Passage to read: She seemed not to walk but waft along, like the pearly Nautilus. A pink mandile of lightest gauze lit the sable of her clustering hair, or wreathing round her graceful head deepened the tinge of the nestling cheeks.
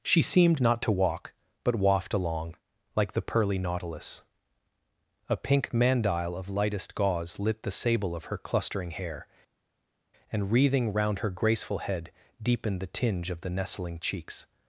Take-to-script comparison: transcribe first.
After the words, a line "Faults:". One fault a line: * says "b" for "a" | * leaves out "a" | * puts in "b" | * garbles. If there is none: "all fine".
She seemed not to walk but waft along, like the pearly Nautilus. A pink mandile of lightest gauze lit the sable of her clustering hair, and wreathing round her graceful head deepened the tinge of the nestling cheeks.
Faults:
* says "and" for "or"